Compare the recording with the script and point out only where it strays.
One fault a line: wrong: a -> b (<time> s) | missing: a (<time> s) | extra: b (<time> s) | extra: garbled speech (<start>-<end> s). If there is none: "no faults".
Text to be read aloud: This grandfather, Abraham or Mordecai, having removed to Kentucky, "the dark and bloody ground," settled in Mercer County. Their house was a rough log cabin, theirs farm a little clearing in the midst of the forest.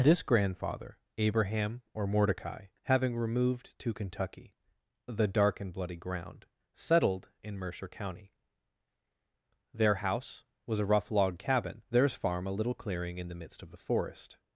no faults